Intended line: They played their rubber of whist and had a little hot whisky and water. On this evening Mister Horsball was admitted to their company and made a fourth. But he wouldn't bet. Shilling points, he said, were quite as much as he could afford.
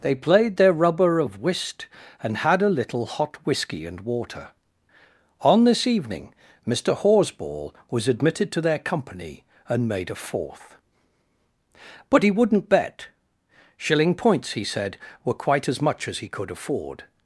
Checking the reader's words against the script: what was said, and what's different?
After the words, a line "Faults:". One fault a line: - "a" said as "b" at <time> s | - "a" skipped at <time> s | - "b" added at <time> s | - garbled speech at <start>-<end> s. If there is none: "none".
They played their rubber of whist and had a little hot whisky and water. On this evening Mister Horsball was admitted to their company and made a fourth. But he wouldn't bet. Shilling points, he said, were quite as much as he could afford.
Faults:
none